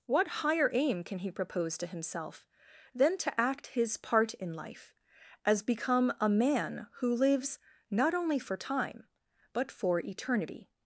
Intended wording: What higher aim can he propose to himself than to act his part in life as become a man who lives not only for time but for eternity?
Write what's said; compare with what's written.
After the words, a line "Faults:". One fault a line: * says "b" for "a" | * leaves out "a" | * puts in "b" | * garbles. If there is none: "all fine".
What higher aim can he propose to himself than to act his part in life as become a man who lives not only for time but for eternity?
Faults:
all fine